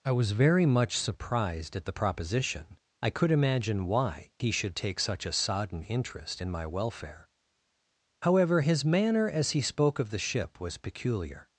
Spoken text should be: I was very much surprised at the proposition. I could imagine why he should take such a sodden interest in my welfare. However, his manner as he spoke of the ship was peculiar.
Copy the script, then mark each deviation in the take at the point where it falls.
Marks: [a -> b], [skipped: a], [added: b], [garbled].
I was very much surprised at the proposition. I could imagine why he should take such a sodden interest in my welfare. However, his manner as he spoke of the ship was peculiar.